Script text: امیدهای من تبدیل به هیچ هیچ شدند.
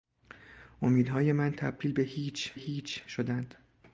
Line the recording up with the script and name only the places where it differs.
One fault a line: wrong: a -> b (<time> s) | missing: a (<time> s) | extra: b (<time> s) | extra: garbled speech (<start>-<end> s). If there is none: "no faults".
no faults